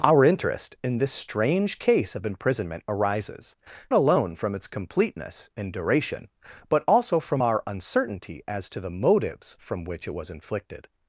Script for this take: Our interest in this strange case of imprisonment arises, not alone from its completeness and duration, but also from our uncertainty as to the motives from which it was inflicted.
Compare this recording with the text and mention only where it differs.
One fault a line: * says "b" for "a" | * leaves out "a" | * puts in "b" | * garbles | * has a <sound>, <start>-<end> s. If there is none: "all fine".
* leaves out "not"